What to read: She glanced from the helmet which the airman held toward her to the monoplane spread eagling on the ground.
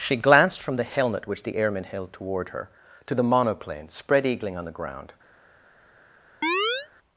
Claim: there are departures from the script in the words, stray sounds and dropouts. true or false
true